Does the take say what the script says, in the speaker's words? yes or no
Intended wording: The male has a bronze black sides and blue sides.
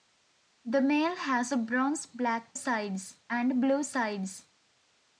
yes